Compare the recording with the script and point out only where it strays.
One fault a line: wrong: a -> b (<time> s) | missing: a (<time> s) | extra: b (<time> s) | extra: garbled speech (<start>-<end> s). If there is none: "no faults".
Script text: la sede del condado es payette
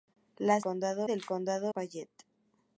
wrong: sede -> condado (0.6 s)
missing: es (1.7 s)